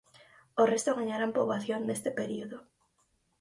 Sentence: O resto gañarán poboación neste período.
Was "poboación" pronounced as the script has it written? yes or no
yes